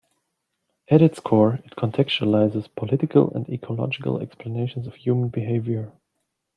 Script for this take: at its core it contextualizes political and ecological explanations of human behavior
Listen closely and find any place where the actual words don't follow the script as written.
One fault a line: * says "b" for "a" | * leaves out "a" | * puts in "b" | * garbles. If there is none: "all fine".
all fine